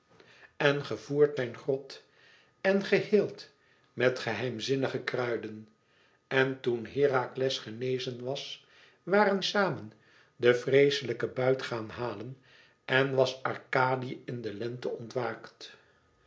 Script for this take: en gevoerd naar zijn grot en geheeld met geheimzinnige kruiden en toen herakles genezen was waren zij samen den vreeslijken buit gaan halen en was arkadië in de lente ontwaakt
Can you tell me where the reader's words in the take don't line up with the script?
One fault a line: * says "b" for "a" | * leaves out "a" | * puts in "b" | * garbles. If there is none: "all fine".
* leaves out "naar"
* leaves out "zij"